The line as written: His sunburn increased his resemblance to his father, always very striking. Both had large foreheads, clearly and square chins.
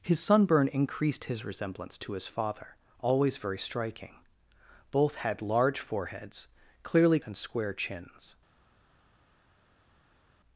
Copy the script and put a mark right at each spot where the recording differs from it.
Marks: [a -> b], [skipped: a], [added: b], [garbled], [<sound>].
His sunburn increased his resemblance to his father, always very striking. Both had large foreheads, clearly and square chins.